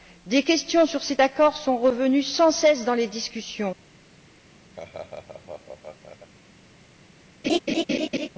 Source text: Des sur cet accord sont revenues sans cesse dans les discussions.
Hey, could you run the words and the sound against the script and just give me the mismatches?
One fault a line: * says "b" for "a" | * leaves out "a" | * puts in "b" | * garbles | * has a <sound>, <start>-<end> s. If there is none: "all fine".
* puts in "questions"
* has a laugh, 4.7-6.3 s
* has a laugh, 7.4-8.3 s